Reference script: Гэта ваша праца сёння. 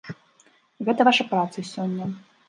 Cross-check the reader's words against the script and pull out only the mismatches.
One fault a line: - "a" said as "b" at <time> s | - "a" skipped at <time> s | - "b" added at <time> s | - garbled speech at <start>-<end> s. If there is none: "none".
none